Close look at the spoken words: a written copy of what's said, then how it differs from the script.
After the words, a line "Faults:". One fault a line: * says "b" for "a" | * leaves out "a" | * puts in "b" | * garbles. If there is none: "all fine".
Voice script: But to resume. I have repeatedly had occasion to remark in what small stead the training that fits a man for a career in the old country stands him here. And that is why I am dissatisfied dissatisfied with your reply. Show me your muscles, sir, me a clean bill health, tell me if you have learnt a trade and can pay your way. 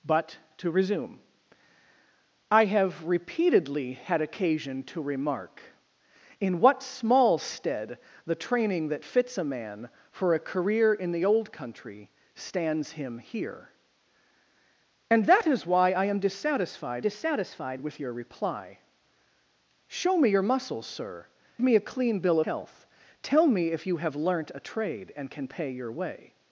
But to resume. I have repeatedly had occasion to remark in what small stead the training that fits a man for a career in the old country stands him here. And that is why I am dissatisfied dissatisfied with your reply. Show me your muscles, sir, me a clean bill health, tell me if you have learnt a trade and can pay your way.
Faults:
all fine